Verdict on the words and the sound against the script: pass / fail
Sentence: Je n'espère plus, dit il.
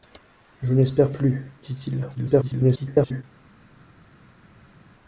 fail